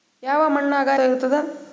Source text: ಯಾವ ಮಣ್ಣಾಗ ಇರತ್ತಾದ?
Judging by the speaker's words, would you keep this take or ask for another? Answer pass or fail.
pass